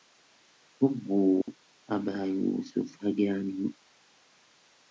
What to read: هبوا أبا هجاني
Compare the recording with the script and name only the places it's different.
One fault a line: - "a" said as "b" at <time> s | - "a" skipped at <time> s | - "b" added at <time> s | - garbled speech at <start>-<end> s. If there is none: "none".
- "يوسف" added at 2.2 s